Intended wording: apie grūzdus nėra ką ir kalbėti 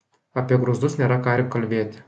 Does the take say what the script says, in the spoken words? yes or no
yes